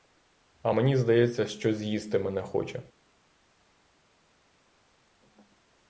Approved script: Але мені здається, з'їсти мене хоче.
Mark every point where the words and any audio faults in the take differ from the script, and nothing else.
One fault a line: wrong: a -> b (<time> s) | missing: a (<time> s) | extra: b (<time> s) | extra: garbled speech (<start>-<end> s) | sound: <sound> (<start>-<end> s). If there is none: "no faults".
wrong: Але -> А (0.6 s)
extra: що (1.5 s)